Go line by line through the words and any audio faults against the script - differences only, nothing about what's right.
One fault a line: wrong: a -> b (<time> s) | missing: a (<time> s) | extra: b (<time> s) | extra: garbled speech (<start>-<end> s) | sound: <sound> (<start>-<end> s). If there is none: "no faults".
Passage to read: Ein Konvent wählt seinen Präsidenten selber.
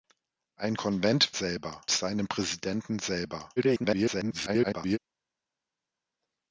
wrong: wählt -> selber (1.3 s)
extra: garbled speech (3.6-5.0 s)